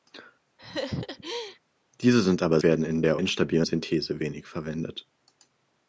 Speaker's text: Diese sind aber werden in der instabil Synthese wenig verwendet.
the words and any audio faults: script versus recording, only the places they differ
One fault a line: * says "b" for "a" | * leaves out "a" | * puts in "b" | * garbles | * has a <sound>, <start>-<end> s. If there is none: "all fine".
* has a laugh, 0.6-1.6 s